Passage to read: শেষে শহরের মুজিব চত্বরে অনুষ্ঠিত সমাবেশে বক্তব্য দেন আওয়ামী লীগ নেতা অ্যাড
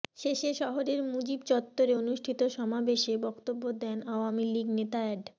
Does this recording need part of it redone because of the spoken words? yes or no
no